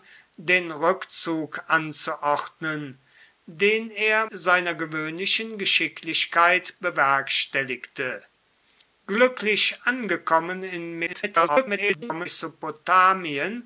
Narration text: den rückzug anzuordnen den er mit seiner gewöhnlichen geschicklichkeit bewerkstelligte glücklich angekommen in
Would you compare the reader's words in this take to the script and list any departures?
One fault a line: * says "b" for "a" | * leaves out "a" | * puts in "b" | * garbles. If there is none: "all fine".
* leaves out "mit"
* garbles